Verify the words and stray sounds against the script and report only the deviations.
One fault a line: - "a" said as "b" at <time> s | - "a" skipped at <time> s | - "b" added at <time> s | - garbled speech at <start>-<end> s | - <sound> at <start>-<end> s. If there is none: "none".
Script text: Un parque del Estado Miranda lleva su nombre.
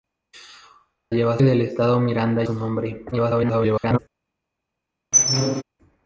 - "parque" said as "lleva" at 1.1 s
- "lleva" skipped at 2.4 s
- garbled speech at 3.1-4.0 s
- squeak at 5.1-5.6 s